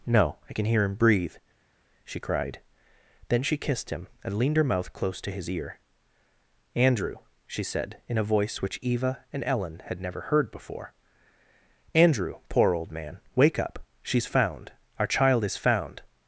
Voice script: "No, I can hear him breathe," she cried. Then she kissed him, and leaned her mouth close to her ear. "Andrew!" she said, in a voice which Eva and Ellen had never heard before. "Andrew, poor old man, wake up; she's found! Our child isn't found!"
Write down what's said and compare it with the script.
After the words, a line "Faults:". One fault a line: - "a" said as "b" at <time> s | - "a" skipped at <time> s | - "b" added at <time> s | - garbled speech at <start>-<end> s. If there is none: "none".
"No, I can hear him breathe," she cried. Then she kissed him, and leaned her mouth close to his ear. "Andrew!" she said, in a voice which Eva and Ellen had never heard before. "Andrew, poor old man, wake up; she's found! Our child is found!"
Faults:
- "her" said as "his" at 5.3 s
- "isn't" said as "is" at 15.4 s